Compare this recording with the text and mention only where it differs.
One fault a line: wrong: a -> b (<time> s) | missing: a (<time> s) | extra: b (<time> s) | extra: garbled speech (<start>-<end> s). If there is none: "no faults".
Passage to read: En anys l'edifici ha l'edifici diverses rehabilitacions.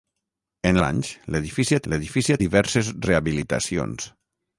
no faults